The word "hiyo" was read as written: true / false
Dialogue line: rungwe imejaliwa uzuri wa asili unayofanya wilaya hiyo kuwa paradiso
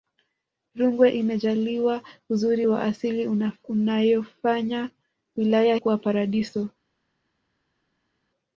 false